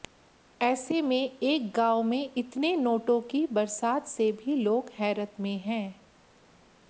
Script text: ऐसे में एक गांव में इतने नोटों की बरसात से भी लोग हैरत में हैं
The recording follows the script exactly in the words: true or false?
true